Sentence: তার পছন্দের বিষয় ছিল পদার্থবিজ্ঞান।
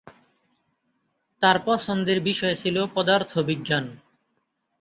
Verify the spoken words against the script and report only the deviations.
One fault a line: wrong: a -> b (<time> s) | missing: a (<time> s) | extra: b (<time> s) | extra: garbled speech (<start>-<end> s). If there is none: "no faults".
no faults